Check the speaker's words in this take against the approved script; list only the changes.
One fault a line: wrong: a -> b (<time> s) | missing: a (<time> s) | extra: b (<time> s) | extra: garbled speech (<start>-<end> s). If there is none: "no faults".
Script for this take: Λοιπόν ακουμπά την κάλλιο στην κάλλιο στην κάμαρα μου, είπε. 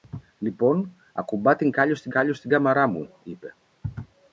no faults